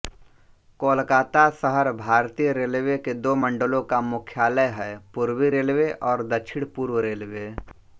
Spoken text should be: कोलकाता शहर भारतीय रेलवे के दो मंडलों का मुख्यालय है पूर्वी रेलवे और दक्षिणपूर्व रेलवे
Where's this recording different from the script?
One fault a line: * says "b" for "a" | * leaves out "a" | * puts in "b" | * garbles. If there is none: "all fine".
all fine